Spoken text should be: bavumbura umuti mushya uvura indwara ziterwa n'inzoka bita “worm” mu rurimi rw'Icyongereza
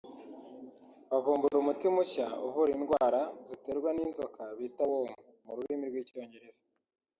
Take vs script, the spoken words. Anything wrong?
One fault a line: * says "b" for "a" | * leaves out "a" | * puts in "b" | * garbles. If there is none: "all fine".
all fine